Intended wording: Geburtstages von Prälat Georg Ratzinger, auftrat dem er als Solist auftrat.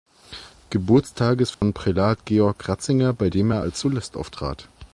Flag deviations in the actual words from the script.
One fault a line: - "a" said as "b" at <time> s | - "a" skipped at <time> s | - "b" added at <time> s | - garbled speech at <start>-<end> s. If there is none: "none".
- "auftrat" said as "bei" at 3.1 s